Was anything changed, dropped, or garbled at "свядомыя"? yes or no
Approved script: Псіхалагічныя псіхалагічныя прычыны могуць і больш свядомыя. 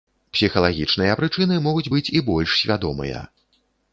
no